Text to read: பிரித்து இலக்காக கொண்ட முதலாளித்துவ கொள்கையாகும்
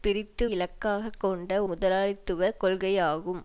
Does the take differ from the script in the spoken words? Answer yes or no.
no